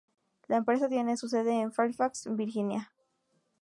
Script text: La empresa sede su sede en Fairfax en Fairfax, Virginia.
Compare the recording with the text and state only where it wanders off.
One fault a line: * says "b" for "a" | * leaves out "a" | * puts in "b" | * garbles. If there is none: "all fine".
* says "tiene" for "sede"
* leaves out "en Fairfax"